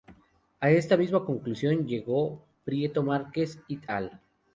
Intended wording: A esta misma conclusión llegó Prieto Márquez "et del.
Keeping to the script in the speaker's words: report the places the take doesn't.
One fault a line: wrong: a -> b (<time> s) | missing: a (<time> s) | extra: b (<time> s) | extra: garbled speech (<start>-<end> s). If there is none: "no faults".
wrong: del -> al (3.9 s)